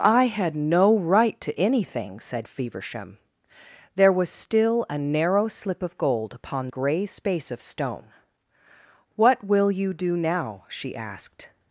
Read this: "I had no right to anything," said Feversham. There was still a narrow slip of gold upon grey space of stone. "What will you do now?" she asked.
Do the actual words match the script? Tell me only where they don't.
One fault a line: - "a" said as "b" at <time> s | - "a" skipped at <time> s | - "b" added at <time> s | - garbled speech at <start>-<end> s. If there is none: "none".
none